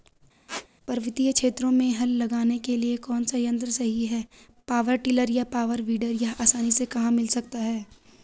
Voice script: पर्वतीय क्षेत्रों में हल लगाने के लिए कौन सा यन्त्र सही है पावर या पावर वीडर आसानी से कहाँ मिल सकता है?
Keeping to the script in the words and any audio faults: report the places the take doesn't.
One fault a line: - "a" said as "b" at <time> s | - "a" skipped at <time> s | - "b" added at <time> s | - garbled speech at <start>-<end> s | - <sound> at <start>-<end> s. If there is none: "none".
- squeak at 0.5-0.7 s
- "टिलर" added at 5.0 s
- "यह" added at 6.2 s